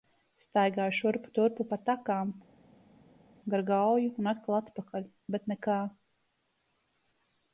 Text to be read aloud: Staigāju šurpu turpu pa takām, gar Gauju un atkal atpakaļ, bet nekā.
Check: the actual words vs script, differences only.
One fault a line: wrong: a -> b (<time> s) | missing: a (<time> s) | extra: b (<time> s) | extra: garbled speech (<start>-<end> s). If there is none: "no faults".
no faults